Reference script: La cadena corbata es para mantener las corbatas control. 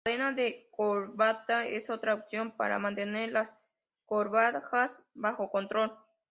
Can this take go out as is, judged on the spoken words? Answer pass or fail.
fail